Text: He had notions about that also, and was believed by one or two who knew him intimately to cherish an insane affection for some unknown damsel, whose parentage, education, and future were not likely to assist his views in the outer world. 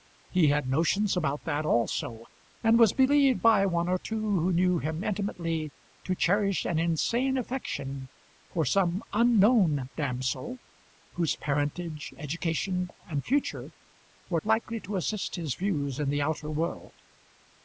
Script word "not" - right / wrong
wrong